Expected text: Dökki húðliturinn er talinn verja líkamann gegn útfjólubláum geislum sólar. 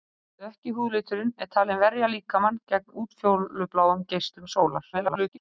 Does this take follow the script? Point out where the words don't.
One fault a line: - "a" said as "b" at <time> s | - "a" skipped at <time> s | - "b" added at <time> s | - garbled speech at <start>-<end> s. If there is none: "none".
- garbled speech at 4.9-5.4 s